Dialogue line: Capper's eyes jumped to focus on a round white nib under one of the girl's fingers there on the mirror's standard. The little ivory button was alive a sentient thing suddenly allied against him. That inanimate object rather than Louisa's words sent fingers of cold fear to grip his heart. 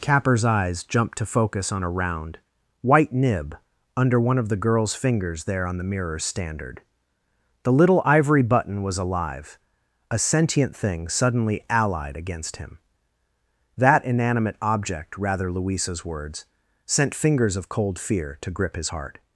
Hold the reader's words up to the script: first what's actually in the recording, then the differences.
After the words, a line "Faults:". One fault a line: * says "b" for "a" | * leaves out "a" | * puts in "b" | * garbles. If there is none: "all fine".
Capper's eyes jumped to focus on a round white nib under one of the girl's fingers there on the mirror's standard. The little ivory button was alive a sentient thing suddenly allied against him. That inanimate object rather Louisa's words sent fingers of cold fear to grip his heart.
Faults:
* leaves out "than"